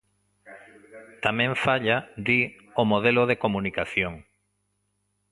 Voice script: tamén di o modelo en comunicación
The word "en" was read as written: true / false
false